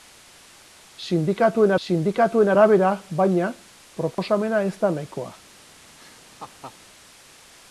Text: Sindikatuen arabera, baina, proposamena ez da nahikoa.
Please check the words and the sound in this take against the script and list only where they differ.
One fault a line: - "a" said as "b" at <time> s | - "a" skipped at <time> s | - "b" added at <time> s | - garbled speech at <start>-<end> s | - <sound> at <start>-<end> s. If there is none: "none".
- "sindikatuen" added at 1.9 s
- dropout at 4.1-4.2 s
- laugh at 6.0-6.8 s